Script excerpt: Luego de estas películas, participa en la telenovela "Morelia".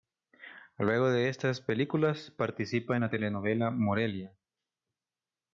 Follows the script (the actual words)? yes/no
yes